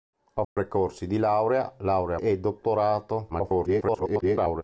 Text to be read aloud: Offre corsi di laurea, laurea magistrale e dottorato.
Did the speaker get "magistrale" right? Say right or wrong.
wrong